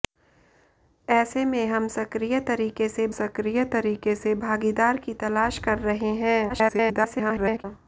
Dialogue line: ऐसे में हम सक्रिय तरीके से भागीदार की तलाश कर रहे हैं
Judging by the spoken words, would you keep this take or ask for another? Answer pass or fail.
fail